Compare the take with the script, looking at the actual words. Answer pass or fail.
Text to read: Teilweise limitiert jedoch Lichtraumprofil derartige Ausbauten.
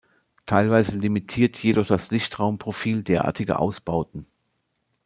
fail